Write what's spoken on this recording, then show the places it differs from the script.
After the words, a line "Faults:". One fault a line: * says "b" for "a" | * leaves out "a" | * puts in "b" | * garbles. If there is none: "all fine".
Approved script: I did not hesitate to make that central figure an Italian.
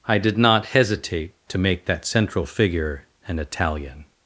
I did not hesitate to make that central figure an Italian.
Faults:
all fine